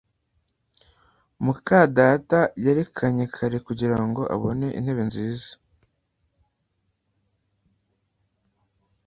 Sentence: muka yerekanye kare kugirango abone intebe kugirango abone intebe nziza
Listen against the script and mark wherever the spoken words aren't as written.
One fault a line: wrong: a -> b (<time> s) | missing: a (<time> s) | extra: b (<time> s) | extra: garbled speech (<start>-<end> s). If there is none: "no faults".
extra: data (2.0 s)
missing: kugirango abone intebe (5.0 s)